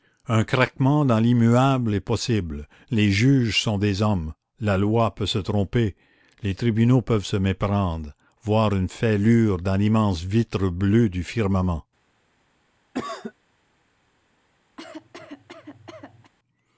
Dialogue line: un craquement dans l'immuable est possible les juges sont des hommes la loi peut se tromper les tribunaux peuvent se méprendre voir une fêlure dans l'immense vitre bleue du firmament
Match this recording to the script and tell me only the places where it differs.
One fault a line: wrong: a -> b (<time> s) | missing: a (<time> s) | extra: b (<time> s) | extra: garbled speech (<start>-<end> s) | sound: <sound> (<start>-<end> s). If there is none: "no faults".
sound: cough (12.9-13.3 s)
sound: cough (14.8-16.3 s)